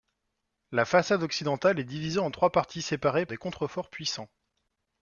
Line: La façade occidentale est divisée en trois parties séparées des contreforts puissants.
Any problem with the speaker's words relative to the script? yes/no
no